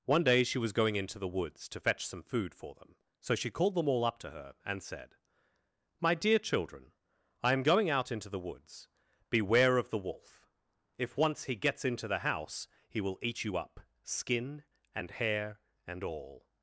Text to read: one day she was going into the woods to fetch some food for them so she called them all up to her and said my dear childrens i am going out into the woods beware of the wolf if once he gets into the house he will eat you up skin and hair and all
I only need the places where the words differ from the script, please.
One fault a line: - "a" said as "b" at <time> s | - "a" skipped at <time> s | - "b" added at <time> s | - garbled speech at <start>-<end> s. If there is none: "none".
- "childrens" said as "children" at 6.4 s